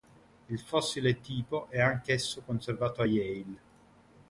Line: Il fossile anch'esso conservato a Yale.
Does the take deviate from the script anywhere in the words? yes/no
yes